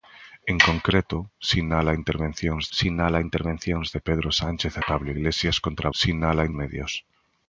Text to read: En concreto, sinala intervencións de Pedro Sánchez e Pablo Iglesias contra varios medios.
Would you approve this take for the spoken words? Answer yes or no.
no